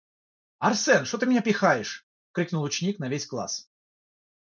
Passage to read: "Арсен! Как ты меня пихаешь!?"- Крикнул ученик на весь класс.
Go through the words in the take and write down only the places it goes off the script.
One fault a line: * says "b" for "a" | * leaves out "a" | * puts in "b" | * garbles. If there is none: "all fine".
* says "Что" for "Как"